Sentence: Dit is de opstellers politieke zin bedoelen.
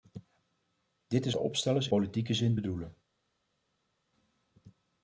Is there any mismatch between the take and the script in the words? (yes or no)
no